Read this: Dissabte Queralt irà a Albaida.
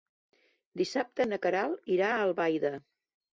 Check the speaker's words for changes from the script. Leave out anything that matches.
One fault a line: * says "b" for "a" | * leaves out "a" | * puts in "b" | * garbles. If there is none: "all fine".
* puts in "na"